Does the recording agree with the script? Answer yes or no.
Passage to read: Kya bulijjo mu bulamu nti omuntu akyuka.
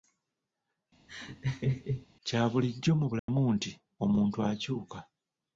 yes